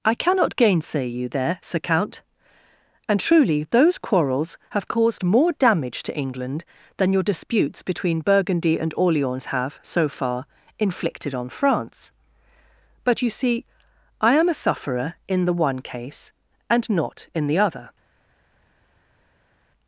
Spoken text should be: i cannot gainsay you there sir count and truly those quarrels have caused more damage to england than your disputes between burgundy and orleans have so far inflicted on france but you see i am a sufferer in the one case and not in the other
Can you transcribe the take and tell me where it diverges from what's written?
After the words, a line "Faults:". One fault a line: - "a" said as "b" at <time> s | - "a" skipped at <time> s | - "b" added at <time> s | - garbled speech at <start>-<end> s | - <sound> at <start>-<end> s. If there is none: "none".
i cannot gainsay you there sir count and truly those quarrels have caused more damage to england than your disputes between burgundy and orleans have so far inflicted on france but you see i am a sufferer in the one case and not in the other
Faults:
none